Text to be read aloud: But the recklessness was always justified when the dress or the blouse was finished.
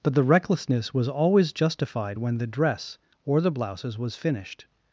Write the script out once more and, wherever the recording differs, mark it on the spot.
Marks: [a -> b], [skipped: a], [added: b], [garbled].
But the recklessness was always justified when the dress or the [blouse -> blouses] was finished.